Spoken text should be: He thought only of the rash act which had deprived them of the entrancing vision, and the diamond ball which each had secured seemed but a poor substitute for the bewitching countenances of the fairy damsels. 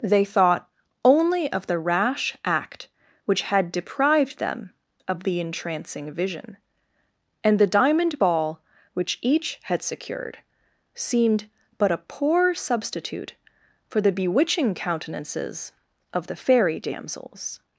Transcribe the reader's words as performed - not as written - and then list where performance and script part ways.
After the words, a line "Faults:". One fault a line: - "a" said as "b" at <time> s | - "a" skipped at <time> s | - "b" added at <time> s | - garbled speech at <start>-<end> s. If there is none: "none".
They thought only of the rash act which had deprived them of the entrancing vision, and the diamond ball which each had secured seemed but a poor substitute for the bewitching countenances of the fairy damsels.
Faults:
- "He" said as "They" at 0.0 s